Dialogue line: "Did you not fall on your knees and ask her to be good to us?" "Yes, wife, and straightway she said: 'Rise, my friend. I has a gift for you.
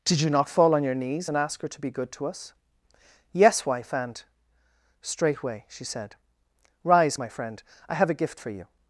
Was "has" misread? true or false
true